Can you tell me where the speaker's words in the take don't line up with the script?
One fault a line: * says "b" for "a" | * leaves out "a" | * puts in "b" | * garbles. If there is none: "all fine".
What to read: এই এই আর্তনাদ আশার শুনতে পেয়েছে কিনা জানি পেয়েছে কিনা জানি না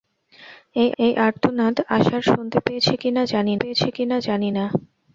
all fine